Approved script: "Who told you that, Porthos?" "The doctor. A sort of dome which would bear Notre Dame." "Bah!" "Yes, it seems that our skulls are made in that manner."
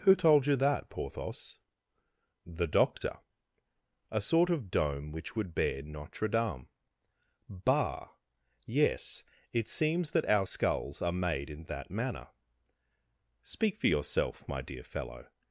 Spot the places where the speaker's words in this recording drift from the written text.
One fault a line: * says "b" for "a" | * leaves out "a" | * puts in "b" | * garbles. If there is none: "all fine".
* puts in "Speak for yourself my dear fellow"